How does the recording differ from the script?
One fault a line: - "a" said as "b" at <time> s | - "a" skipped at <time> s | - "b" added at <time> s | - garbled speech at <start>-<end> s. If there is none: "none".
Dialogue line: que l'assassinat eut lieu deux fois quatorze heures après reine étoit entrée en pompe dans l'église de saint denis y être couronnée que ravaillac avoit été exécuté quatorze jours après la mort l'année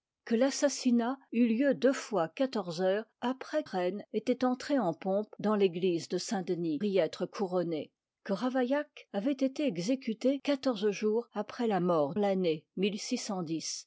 none